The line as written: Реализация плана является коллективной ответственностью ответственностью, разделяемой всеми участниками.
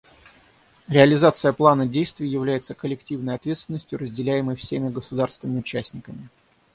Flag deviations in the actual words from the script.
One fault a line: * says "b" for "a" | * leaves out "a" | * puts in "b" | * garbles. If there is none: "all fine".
* puts in "действий"
* leaves out "ответственностью"
* puts in "государствами"